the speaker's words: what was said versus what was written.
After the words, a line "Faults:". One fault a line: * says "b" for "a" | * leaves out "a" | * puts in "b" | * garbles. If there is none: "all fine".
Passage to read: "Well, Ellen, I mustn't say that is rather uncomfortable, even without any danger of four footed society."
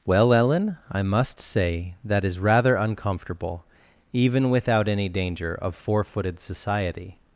"Well, Ellen, I must say that is rather uncomfortable, even without any danger of four footed society."
Faults:
* says "must" for "mustn't"